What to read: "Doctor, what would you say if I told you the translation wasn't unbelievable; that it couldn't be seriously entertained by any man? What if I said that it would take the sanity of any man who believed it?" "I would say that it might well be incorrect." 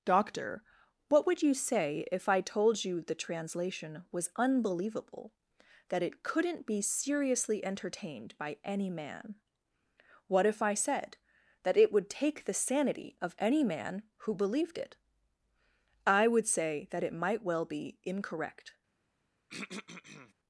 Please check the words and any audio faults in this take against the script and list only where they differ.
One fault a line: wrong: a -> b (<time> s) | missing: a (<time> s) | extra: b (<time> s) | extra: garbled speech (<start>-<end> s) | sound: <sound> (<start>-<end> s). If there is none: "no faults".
wrong: wasn't -> was (4.1 s)
sound: throat clearing (19.5-20.3 s)